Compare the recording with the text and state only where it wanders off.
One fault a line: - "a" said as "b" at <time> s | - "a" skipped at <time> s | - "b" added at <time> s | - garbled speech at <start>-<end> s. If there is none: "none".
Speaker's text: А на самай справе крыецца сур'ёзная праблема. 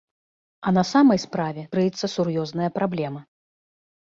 none